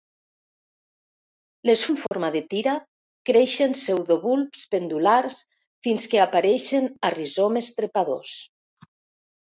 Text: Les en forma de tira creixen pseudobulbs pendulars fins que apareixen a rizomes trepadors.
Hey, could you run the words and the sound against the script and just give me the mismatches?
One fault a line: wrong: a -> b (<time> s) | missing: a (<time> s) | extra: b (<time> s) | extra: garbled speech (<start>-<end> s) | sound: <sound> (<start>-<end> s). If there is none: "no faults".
sound: dropout (2.1-2.1 s)